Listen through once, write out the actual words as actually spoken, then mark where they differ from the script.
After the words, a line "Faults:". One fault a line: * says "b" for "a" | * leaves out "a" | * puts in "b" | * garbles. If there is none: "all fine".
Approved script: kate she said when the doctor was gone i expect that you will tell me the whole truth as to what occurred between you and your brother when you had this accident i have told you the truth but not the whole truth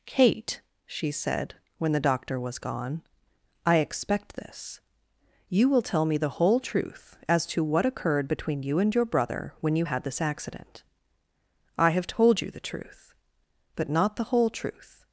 kate she said when the doctor was gone i expect this you will tell me the whole truth as to what occurred between you and your brother when you had this accident i have told you the truth but not the whole truth
Faults:
* says "this" for "that"